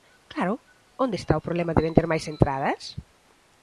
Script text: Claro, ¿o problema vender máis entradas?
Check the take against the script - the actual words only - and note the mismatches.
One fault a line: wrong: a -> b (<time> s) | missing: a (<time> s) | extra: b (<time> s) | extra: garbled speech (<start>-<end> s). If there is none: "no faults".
extra: onde está (1.0 s)
extra: de (1.7 s)